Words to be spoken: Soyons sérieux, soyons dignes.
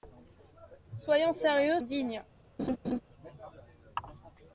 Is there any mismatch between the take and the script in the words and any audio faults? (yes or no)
yes